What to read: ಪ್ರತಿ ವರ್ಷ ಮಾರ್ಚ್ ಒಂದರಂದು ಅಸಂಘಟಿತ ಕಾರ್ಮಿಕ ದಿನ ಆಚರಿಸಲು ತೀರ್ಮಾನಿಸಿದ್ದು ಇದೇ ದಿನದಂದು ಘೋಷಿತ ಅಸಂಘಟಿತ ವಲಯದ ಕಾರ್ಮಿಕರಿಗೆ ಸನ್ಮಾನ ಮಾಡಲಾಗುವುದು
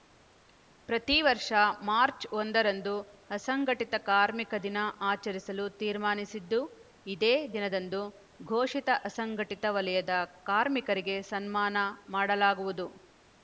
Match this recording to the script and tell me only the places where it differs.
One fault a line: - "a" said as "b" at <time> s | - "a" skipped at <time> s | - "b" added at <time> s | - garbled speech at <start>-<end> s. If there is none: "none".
none